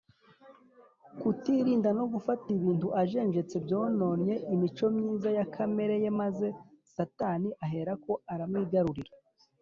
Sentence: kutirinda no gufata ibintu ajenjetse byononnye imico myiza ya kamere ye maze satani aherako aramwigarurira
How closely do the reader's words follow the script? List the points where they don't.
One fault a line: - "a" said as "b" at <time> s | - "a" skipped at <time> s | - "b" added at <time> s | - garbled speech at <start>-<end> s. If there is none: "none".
none